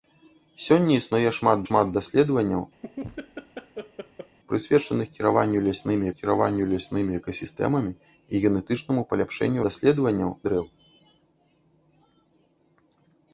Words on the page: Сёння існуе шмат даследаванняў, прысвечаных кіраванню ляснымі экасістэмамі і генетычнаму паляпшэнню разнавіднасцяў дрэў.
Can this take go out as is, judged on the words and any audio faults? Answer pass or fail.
fail